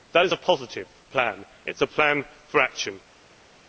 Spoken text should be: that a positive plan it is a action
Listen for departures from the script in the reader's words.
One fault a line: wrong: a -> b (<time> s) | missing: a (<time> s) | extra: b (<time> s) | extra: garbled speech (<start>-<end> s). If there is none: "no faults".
extra: is (0.2 s)
extra: plan for (1.9 s)